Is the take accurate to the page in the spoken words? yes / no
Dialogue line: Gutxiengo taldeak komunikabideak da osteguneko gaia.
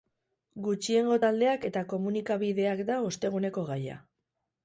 no